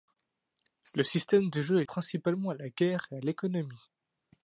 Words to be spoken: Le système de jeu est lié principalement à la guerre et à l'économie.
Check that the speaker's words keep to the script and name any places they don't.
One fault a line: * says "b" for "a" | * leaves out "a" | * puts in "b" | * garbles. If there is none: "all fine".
* leaves out "lié"